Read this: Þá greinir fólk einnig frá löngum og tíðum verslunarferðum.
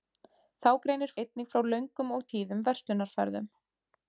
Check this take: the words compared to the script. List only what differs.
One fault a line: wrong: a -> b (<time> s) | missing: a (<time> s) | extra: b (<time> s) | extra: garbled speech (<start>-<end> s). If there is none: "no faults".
missing: fólk (1.1 s)